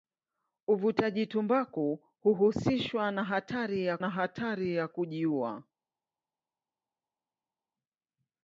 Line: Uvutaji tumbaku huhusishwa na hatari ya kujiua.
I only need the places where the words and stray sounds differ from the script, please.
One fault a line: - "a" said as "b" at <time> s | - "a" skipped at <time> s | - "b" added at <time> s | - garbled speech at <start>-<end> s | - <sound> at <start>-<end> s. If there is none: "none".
- "na hatari ya" added at 4.0 s